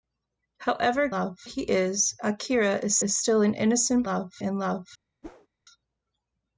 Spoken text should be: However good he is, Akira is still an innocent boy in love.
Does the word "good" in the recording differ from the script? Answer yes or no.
yes